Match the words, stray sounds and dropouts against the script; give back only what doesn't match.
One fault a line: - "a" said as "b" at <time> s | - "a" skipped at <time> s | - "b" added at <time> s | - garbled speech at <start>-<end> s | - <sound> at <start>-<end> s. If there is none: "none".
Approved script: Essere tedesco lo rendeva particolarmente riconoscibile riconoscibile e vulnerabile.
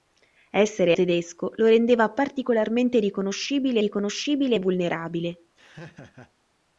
- laugh at 5.6-6.3 s